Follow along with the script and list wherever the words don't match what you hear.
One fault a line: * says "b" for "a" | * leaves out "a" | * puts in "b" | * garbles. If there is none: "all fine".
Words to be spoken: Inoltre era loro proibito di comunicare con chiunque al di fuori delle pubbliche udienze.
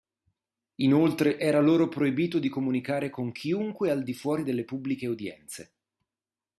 all fine